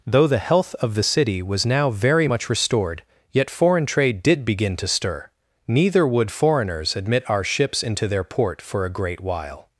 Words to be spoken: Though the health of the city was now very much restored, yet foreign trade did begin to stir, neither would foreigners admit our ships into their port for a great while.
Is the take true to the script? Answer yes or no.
yes